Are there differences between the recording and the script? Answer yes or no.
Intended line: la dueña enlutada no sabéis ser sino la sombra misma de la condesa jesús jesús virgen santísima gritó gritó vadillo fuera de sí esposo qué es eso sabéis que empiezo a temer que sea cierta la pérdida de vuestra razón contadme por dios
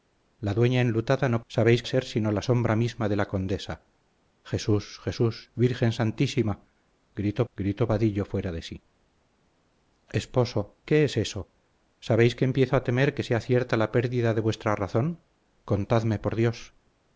no